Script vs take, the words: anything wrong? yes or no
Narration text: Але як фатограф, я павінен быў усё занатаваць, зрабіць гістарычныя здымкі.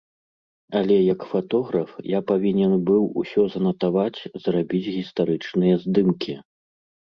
no